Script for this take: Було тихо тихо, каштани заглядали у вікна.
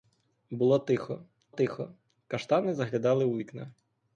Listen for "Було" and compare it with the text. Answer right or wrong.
right